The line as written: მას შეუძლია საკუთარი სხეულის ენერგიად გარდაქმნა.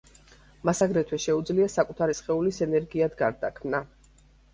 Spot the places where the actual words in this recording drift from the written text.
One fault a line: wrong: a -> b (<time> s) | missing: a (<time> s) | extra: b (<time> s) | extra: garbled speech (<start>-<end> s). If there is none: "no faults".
extra: აგრეთვე (0.8 s)